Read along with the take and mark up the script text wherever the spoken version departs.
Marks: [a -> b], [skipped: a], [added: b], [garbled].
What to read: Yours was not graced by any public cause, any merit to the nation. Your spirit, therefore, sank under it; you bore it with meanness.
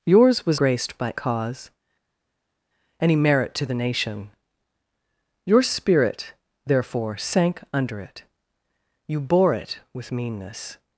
Yours was [skipped: not] graced by [skipped: any public] cause, any merit to the nation. Your spirit, therefore, sank under it; you bore it with meanness.